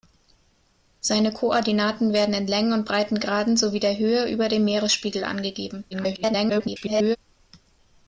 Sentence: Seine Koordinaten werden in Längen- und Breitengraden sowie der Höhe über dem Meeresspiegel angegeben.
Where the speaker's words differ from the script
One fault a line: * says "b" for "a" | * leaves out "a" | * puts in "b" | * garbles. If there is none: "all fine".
* garbles